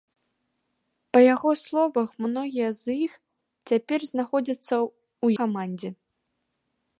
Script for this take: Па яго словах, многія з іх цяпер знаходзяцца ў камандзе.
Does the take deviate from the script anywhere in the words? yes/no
no